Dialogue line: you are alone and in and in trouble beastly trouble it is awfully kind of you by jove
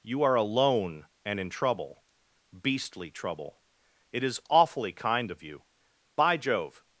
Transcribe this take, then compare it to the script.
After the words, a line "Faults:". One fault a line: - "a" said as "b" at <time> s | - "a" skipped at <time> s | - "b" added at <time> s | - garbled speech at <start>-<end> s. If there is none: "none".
you are alone and in trouble beastly trouble it is awfully kind of you by jove
Faults:
- "and in" skipped at 1.5 s